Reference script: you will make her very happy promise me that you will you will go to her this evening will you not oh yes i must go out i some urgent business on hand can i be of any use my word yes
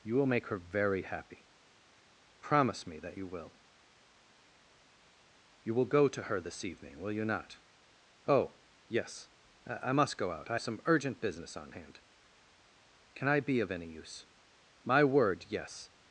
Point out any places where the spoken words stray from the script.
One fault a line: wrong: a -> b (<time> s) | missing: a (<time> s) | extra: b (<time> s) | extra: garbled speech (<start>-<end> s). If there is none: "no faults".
no faults